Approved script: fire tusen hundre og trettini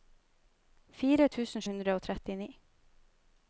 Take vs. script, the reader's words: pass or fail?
pass